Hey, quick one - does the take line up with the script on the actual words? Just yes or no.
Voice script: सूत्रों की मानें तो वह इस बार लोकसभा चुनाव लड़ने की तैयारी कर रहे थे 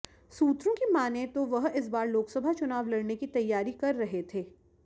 yes